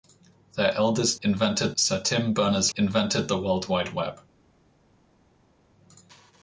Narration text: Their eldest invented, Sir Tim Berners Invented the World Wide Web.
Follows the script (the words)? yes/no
yes